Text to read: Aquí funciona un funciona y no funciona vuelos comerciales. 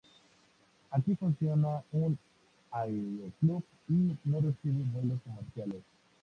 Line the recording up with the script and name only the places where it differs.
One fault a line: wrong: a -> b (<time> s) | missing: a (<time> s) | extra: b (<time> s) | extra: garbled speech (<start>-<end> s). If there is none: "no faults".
wrong: funciona -> aeroclub (2.7 s)
wrong: funciona -> recibe (4.4 s)